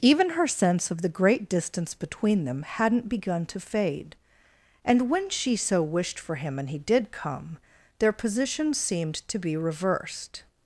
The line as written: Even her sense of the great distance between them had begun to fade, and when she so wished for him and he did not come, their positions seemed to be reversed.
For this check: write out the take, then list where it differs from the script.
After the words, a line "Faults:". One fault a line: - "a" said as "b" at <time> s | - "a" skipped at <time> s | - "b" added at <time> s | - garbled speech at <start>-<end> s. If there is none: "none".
Even her sense of the great distance between them hadn't begun to fade, and when she so wished for him and he did come, their positions seemed to be reversed.
Faults:
- "had" said as "hadn't" at 2.6 s
- "not" skipped at 7.1 s